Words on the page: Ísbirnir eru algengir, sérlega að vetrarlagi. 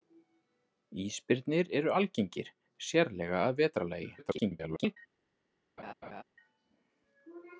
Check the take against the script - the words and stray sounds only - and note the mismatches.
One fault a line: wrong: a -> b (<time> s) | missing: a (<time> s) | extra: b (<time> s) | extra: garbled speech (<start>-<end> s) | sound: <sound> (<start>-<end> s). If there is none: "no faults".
extra: garbled speech (4.2-5.0 s)
sound: laugh (5.8-6.2 s)